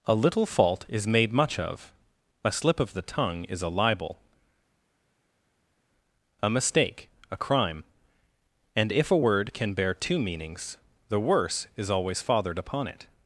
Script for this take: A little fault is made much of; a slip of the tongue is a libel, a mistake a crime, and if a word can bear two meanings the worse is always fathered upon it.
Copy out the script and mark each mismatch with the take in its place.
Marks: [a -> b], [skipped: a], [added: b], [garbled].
A little fault is made much of; a slip of the tongue is a libel, a mistake a crime, and if a word can bear two meanings the worse is always fathered upon it.